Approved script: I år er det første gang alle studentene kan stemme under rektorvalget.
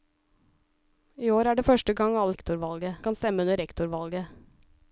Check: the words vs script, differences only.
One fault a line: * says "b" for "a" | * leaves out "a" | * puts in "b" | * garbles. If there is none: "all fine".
* says "rektorvalget" for "studentene"